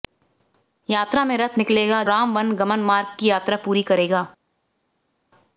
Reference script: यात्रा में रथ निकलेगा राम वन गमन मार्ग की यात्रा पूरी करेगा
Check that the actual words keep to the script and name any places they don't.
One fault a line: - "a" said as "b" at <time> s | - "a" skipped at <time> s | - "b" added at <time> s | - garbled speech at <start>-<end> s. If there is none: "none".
none